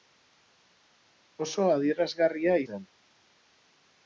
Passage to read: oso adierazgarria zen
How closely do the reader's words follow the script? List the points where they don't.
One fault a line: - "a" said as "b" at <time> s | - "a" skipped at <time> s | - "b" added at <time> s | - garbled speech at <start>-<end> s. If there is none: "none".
none